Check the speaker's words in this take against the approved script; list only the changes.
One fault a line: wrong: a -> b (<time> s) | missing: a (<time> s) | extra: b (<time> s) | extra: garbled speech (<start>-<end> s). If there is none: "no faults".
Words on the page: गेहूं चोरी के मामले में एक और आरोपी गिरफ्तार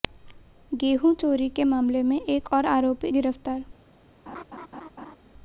no faults